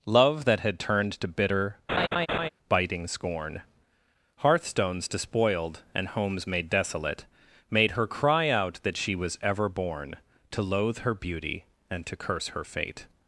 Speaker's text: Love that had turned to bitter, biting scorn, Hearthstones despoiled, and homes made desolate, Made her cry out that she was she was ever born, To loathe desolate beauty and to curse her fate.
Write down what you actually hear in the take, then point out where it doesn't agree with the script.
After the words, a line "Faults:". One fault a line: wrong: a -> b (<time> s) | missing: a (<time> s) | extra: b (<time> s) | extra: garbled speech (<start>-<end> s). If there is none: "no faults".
Love that had turned to bitter, biting scorn, Hearthstones despoiled, and homes made desolate, Made her cry out that she was ever born, To loathe her beauty and to curse her fate.
Faults:
missing: she was (9.4 s)
wrong: desolate -> her (11.0 s)